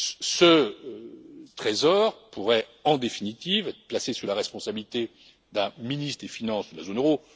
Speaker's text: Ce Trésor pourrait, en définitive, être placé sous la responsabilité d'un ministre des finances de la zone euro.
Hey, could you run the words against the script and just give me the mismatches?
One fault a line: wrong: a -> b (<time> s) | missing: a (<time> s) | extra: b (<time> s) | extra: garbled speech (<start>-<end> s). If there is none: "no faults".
no faults